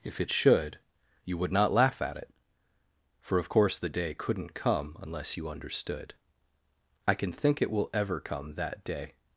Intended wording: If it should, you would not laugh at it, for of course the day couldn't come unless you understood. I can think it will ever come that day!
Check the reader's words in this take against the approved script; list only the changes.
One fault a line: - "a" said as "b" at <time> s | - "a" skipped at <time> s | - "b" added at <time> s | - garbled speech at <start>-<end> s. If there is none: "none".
none